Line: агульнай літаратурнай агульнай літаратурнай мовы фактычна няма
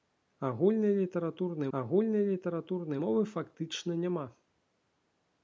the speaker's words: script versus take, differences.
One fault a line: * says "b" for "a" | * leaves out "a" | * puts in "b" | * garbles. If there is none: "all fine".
all fine